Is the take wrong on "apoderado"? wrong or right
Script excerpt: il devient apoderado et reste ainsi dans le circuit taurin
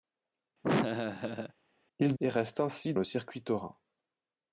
wrong